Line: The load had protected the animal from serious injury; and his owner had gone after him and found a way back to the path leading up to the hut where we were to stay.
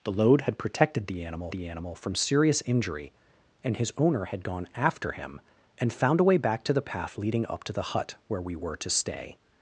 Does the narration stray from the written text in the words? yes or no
yes